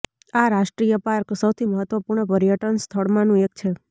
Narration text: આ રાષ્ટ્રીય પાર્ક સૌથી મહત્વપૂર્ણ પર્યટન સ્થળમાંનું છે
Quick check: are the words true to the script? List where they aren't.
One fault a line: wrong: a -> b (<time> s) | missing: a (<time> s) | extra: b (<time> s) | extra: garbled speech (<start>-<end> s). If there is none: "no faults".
extra: એક (3.4 s)